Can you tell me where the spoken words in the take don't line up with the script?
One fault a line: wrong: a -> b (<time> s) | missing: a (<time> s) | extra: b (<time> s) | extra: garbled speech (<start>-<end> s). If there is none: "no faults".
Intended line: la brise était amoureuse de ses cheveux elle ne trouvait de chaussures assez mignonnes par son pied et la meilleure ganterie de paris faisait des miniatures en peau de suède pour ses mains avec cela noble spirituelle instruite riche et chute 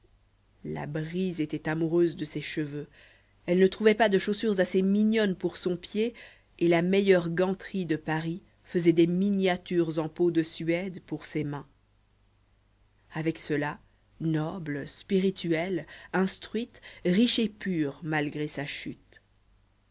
extra: pas (3.9 s)
wrong: par -> pour (5.3 s)
extra: pure malgré sa (17.5 s)